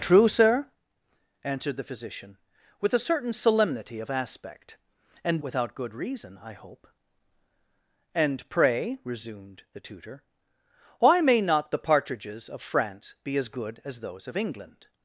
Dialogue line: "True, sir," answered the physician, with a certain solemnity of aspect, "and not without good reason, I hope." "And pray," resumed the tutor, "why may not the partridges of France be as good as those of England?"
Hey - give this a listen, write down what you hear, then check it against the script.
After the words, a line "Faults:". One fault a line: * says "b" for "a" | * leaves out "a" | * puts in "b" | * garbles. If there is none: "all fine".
"True, sir," answered the physician, with a certain solemnity of aspect, "and without good reason, I hope." "And pray," resumed the tutor, "why may not the partridges of France be as good as those of England?"
Faults:
* leaves out "not"